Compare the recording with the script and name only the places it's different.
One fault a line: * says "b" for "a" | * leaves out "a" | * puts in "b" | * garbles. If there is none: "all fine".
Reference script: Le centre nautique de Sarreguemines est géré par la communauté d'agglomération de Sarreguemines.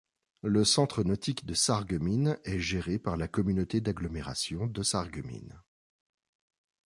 all fine